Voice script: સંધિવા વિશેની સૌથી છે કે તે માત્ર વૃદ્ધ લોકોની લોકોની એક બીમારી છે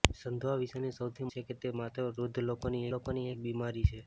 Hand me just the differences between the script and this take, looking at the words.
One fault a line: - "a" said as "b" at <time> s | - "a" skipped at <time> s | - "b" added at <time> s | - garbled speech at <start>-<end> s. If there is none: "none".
none